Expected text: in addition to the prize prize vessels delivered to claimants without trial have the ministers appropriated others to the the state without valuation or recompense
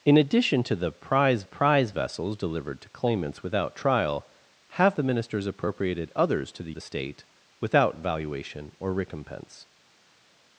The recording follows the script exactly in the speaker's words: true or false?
true